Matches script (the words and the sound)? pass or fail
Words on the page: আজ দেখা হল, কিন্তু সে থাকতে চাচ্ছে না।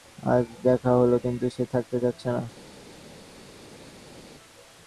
pass